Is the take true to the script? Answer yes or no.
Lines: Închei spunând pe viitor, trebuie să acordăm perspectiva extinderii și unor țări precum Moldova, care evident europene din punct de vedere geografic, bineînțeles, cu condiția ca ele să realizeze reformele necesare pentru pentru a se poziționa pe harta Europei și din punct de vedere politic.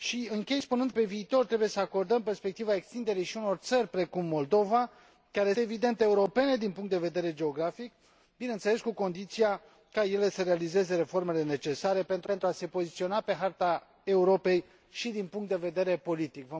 yes